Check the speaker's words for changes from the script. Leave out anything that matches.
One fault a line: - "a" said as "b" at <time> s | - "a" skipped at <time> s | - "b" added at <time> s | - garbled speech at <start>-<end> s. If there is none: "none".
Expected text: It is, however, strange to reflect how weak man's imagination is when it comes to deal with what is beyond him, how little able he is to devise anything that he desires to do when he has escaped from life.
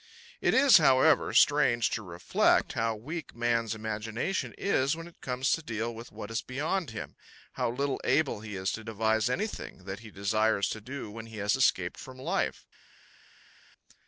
none